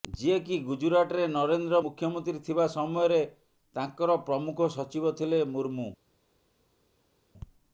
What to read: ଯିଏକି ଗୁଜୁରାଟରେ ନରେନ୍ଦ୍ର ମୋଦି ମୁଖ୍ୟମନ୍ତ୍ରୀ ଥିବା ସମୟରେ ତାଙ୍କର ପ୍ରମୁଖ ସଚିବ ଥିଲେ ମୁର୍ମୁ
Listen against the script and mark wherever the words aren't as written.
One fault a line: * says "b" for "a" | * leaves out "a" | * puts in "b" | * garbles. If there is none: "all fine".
* leaves out "ମୋଦି"